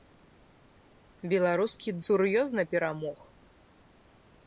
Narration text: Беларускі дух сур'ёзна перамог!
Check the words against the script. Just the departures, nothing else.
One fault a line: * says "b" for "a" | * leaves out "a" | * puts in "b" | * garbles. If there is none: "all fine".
* leaves out "дух"